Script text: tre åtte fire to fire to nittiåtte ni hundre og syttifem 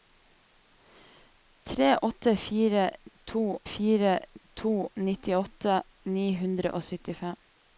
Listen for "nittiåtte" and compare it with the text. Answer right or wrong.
right